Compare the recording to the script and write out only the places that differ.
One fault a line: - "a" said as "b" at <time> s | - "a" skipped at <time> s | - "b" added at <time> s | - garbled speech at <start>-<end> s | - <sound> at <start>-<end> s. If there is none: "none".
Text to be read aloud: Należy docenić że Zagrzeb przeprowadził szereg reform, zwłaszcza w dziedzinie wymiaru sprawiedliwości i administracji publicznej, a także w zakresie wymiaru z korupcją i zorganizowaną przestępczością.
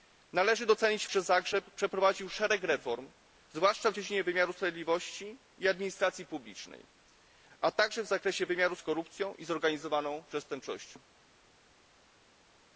none